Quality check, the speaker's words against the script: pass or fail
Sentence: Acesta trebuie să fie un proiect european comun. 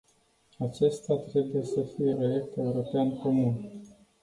fail